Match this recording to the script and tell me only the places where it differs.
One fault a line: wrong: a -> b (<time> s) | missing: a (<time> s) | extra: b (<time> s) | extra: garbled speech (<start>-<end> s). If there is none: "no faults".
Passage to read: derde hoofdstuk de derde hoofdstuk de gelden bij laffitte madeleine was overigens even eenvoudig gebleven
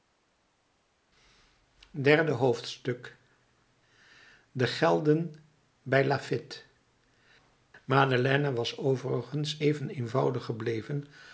missing: derde hoofdstuk de (4.7 s)